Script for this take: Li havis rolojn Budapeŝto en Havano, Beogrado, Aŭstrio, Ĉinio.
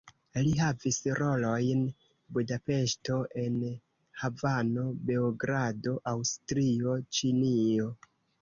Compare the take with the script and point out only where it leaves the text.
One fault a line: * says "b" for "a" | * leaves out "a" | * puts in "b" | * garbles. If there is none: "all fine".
all fine